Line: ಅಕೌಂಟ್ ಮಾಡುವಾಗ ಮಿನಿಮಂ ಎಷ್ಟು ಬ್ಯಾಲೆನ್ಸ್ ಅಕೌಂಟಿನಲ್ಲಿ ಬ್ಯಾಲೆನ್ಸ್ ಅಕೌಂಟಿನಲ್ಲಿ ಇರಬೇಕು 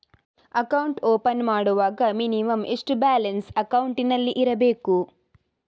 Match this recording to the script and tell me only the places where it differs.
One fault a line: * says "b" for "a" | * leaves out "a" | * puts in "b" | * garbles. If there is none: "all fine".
* puts in "ಓಪನ್"
* leaves out "ಬ್ಯಾಲೆನ್ಸ್ ಅಕೌಂಟಿನಲ್ಲಿ"